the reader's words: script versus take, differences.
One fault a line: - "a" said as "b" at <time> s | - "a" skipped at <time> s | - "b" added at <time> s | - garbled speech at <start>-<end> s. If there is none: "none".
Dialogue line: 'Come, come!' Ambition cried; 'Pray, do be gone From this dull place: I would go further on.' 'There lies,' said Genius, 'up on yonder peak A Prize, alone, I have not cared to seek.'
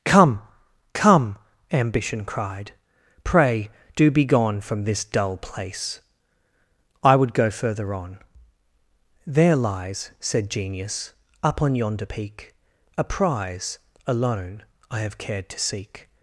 - "not" skipped at 15.2 s